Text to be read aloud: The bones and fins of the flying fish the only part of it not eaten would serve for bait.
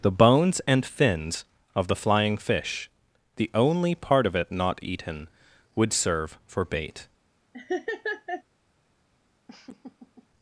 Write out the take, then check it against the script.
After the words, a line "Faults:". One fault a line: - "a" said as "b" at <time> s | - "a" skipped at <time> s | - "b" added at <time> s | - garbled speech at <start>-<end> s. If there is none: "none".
The bones and fins of the flying fish the only part of it not eaten would serve for bait.
Faults:
none